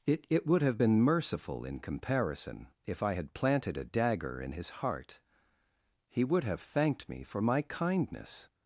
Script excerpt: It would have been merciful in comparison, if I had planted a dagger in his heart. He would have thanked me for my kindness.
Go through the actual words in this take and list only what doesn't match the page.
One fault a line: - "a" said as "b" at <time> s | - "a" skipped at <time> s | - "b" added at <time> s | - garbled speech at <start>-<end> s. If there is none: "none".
- "it" added at 0.3 s